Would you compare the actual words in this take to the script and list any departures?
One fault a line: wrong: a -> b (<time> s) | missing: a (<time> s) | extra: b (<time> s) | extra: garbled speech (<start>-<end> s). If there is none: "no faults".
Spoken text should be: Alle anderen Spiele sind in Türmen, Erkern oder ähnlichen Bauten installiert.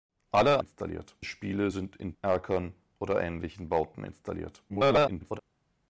wrong: anderen -> installiert (0.6 s)
missing: Türmen (2.1 s)
extra: garbled speech (4.7-5.4 s)